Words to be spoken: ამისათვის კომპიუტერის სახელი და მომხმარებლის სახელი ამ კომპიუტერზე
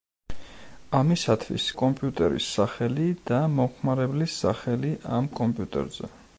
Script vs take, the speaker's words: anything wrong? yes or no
no